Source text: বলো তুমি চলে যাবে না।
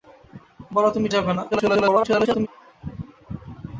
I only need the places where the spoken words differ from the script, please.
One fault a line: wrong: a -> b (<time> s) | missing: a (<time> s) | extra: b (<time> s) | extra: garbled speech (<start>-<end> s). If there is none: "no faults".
missing: চলে (1.1 s)
extra: garbled speech (1.5-2.5 s)